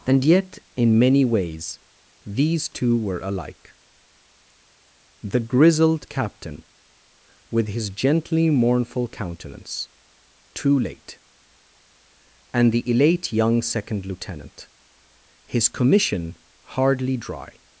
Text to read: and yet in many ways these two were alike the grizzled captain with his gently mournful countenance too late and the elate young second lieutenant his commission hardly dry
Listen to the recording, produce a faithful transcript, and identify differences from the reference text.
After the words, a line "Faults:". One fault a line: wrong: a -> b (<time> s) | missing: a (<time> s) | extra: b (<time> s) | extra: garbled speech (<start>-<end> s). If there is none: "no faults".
and yet in many ways these two were alike the grizzled captain with his gently mournful countenance too late and the elate young second lieutenant his commission hardly dry
Faults:
no faults